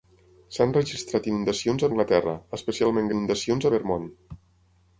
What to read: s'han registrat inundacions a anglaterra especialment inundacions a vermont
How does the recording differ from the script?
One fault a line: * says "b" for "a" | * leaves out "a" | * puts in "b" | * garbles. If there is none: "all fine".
all fine